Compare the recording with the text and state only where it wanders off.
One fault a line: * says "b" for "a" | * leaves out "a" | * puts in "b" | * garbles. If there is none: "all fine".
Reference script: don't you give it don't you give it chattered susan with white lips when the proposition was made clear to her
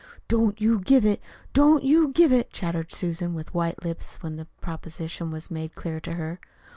all fine